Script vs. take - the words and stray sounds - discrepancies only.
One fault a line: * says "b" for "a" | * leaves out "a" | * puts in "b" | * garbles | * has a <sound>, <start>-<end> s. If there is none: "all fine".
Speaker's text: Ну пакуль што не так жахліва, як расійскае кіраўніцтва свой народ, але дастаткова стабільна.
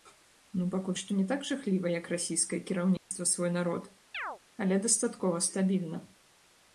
* has a dropout, 3.0-3.1 s
* has a chirp, 4.1-4.4 s